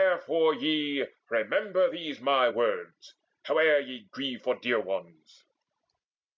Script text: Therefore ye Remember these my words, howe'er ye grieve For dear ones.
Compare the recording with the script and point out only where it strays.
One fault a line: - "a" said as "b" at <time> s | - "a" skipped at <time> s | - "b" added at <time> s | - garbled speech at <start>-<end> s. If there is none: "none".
none